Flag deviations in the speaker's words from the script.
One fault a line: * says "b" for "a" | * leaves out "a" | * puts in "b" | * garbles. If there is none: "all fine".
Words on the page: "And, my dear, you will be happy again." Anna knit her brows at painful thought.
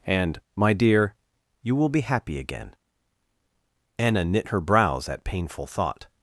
all fine